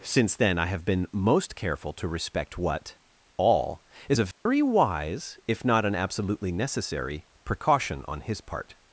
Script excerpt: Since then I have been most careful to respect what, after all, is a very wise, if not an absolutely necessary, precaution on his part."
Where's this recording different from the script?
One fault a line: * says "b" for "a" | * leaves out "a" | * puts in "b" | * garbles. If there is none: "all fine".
* leaves out "after"